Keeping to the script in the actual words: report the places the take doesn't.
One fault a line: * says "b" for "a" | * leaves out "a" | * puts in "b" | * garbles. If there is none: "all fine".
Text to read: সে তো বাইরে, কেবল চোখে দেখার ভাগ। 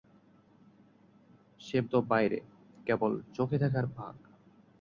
all fine